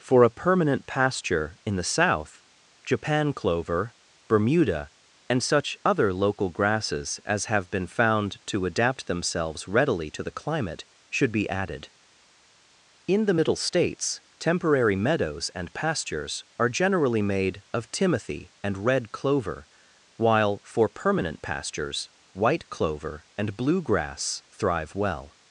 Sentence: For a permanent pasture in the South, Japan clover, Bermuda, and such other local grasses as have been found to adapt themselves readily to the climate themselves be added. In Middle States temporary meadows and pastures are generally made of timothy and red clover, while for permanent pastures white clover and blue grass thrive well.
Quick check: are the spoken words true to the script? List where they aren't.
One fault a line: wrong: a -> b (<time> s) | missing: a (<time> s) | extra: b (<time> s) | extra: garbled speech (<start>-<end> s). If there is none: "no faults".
wrong: themselves -> should (11.1 s)
extra: the (13.2 s)